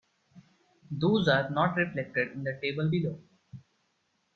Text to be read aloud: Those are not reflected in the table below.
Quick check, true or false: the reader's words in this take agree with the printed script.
true